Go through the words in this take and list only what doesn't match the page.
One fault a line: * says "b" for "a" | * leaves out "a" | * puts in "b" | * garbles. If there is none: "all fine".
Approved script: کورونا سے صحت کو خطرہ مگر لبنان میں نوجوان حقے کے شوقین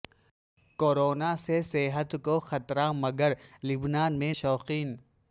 * leaves out "نوجوان حقے کے"